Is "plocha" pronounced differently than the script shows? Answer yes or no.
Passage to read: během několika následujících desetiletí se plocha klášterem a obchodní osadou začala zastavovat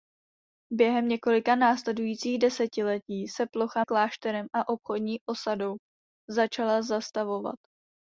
no